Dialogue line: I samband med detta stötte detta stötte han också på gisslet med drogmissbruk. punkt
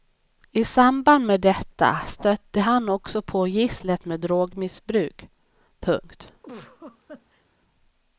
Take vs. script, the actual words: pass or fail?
fail